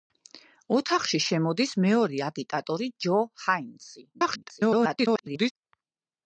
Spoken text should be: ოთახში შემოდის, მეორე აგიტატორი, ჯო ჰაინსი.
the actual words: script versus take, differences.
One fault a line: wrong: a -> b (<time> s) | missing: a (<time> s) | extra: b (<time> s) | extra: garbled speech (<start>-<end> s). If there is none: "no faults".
extra: garbled speech (4.1-5.5 s)